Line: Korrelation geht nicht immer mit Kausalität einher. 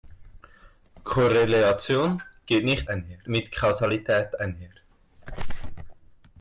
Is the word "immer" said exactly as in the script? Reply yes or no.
no